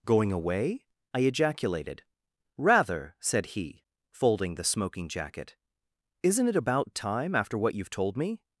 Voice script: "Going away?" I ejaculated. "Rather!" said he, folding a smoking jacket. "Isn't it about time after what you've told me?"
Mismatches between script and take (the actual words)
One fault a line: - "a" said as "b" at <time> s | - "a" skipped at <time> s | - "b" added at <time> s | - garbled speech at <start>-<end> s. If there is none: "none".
- "a" said as "the" at 4.5 s